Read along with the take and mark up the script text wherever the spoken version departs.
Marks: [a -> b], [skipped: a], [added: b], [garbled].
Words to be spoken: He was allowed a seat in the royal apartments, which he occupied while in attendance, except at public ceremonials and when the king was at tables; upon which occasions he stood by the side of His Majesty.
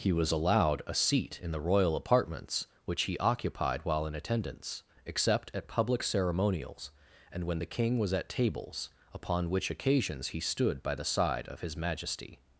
He was allowed a seat in the royal apartments, which he occupied while in attendance, except at public ceremonials and when the king was at tables; upon which occasions he stood by the side of His Majesty.